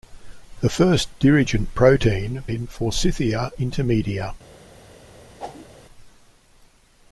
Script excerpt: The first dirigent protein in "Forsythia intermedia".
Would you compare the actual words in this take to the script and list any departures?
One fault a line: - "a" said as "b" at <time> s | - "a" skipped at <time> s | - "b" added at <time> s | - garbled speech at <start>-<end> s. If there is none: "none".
none